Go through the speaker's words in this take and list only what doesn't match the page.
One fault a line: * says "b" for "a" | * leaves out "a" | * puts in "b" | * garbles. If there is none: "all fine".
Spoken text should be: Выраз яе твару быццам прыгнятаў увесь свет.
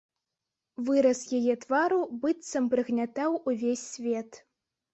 all fine